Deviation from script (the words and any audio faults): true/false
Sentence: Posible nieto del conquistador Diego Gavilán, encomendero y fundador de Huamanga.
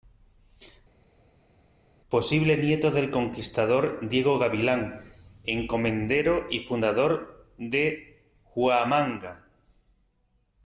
false